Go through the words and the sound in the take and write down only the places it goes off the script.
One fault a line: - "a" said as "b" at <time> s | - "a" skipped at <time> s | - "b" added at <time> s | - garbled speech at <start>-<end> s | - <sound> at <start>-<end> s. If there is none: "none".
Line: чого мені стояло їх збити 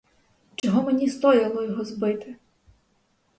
- dropout at 0.6-0.6 s
- "їх" said as "його" at 1.6 s